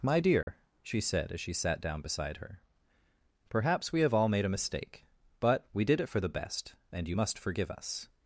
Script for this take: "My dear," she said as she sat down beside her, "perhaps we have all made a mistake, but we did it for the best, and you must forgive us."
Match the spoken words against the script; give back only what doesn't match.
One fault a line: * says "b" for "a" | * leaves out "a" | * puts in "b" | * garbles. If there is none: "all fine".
all fine